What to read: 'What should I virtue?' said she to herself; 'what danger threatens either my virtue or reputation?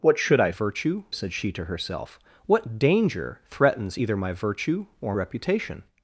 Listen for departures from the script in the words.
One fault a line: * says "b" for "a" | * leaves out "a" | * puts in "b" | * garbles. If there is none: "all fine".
all fine